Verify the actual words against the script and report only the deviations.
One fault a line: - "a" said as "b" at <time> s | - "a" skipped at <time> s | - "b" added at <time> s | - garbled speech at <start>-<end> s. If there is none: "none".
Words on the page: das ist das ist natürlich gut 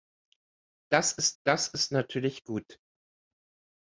none